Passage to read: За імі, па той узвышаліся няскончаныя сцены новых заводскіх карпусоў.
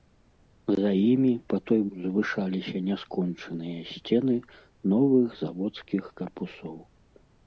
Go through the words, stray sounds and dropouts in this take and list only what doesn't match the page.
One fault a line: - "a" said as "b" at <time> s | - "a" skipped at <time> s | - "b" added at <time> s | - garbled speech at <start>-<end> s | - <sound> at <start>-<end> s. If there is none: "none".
none